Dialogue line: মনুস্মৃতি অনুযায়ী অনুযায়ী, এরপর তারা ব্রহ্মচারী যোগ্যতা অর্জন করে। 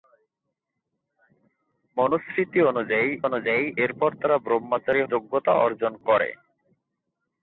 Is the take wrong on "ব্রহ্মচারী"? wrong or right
right